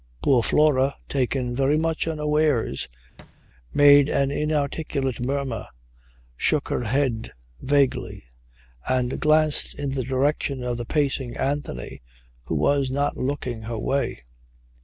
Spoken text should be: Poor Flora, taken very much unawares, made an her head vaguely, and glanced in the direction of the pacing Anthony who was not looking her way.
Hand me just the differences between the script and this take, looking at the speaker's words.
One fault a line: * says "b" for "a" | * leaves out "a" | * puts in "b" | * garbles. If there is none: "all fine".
* puts in "inarticulate murmur shook"